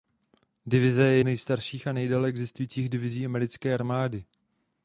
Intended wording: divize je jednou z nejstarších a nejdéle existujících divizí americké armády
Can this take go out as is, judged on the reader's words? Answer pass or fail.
fail